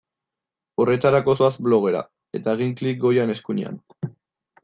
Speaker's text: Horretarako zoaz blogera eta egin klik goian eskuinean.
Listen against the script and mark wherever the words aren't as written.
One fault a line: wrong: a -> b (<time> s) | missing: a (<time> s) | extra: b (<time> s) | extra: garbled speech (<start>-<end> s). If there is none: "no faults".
no faults